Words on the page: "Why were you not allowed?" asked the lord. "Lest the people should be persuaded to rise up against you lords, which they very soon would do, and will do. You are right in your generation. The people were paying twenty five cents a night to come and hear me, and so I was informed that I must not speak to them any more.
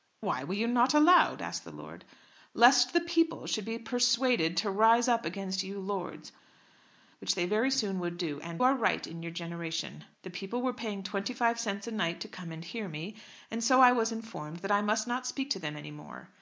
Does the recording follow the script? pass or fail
fail